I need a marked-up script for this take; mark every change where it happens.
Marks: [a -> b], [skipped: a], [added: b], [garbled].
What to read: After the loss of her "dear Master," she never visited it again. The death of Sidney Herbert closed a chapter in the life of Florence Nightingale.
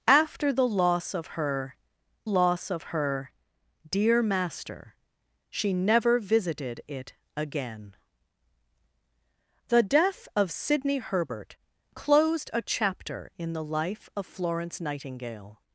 After the loss of her [added: loss of her] "dear Master," she never visited it again. The death of Sidney Herbert closed a chapter in the life of Florence Nightingale.